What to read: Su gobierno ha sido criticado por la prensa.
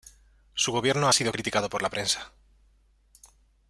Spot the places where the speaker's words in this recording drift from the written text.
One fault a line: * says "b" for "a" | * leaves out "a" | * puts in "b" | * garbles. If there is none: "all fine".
all fine